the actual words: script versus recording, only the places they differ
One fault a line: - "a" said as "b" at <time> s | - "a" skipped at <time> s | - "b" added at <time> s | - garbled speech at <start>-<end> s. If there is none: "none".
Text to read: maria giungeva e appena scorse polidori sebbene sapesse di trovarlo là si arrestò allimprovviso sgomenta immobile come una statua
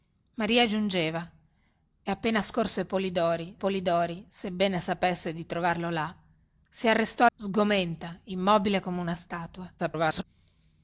- "polidori" added at 3.6 s
- "allimprovviso" skipped at 7.3 s
- garbled speech at 9.8-10.2 s